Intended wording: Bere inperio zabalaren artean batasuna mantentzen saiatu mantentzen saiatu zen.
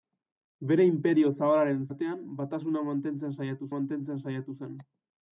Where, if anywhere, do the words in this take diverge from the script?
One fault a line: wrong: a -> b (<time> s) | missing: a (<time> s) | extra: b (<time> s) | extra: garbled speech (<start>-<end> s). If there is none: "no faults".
no faults